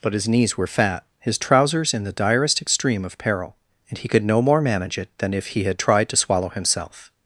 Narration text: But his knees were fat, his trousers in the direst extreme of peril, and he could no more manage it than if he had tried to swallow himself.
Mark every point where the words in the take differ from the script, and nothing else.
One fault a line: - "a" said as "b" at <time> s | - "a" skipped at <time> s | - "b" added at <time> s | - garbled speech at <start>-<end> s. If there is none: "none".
none